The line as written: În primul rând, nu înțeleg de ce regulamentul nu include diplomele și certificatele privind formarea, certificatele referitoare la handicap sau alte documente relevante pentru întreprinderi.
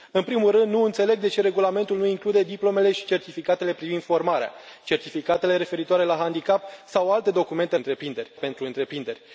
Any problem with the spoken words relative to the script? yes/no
yes